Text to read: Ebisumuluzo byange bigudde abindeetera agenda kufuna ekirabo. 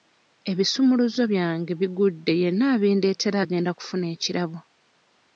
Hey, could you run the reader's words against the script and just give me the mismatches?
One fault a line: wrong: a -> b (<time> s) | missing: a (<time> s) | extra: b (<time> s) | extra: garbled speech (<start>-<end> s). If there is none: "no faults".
extra: yenna (2.4 s)